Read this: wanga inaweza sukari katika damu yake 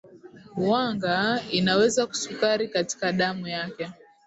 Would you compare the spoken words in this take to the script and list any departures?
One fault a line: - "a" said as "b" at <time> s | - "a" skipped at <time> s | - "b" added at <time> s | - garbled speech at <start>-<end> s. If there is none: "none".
none